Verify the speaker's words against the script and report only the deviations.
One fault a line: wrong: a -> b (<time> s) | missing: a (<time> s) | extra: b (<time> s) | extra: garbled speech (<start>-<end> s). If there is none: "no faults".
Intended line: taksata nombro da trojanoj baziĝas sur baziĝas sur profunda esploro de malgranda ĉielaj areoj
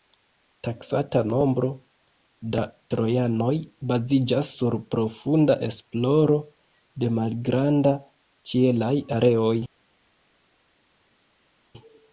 missing: baziĝas sur (4.8 s)